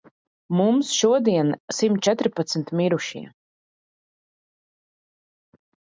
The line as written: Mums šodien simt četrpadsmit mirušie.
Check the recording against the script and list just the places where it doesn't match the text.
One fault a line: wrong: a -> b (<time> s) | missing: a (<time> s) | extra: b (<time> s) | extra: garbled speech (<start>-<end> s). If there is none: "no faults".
no faults